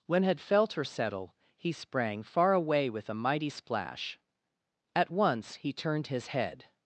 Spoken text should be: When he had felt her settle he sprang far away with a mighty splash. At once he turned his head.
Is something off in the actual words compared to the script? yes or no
yes